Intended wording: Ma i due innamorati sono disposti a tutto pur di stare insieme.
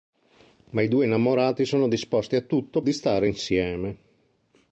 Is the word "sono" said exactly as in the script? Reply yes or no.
yes